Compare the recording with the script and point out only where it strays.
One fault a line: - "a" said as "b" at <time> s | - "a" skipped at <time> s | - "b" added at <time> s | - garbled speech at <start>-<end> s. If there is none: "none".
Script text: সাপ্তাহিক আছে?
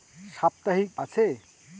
none